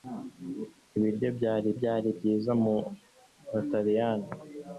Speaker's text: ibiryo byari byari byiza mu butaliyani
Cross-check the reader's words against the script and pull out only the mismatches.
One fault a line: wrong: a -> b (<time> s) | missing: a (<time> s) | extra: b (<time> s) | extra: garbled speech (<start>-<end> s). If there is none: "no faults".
no faults